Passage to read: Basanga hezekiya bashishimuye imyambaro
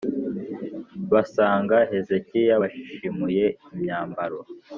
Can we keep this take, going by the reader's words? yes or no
yes